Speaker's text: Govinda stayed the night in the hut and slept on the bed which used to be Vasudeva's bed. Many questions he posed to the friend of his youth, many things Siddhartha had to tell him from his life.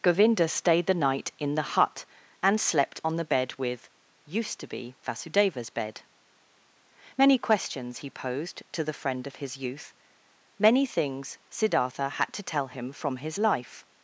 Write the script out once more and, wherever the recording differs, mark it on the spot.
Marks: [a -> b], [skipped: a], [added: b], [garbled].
Govinda stayed the night in the hut and slept on the bed [which -> with] used to be Vasudeva's bed. Many questions he posed to the friend of his youth, many things Siddhartha had to tell him from his life.